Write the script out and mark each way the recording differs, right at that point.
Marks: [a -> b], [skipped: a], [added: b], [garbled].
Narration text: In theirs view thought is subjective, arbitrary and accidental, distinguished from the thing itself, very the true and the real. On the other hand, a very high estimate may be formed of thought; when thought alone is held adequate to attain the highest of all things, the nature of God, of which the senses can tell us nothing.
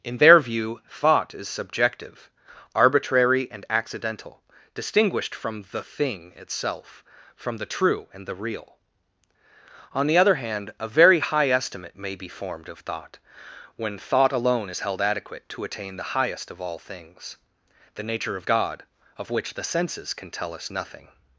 In [theirs -> their] view thought is subjective, arbitrary and accidental, distinguished from the thing itself, [very -> from] the true and the real. On the other hand, a very high estimate may be formed of thought; when thought alone is held adequate to attain the highest of all things, the nature of God, of which the senses can tell us nothing.